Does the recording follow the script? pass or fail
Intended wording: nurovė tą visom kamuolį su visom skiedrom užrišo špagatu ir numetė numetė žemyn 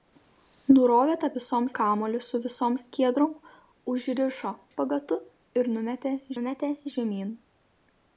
pass